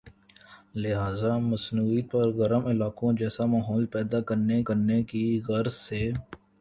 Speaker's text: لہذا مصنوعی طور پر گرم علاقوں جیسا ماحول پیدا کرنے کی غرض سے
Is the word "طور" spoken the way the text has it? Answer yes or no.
no